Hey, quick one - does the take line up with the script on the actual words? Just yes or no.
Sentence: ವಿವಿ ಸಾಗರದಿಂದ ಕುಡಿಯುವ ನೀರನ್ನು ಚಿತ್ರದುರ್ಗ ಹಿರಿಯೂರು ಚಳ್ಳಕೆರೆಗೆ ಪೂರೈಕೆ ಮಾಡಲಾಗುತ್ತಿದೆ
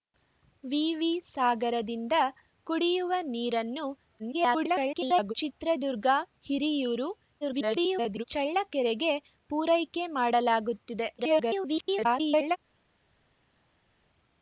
no